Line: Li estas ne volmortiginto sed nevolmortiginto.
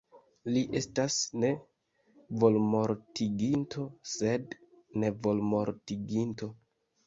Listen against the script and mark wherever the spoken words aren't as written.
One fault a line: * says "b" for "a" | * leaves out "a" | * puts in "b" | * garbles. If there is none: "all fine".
all fine